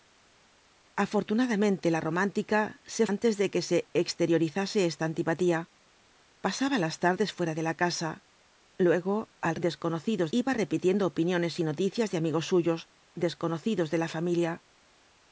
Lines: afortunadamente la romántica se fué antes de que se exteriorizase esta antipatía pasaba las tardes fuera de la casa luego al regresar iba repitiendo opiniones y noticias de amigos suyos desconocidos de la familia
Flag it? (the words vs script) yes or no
yes